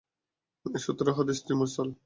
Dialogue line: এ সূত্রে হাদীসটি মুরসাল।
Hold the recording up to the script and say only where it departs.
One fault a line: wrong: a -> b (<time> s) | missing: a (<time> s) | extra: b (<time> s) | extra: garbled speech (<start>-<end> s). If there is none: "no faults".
no faults